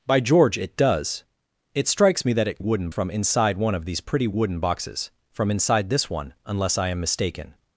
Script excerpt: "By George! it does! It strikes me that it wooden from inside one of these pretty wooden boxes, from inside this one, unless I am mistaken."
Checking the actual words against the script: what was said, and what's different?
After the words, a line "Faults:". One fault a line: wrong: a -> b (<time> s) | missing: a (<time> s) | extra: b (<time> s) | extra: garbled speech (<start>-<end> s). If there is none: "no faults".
"By George! it does! It strikes me that it wooden from inside one of these pretty wooden boxes, from inside this one, unless I am mistaken."
Faults:
no faults